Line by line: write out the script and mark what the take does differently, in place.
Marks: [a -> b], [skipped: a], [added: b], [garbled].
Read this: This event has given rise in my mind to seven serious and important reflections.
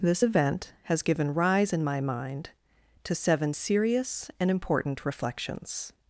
This event has given rise in my mind to seven serious and important reflections.